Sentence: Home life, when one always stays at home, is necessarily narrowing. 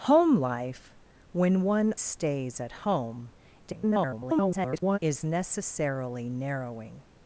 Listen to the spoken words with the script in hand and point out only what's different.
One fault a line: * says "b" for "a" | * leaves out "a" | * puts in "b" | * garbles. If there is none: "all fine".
* leaves out "always"
* garbles